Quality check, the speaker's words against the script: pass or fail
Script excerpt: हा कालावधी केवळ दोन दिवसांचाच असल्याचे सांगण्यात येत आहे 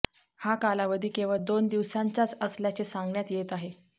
pass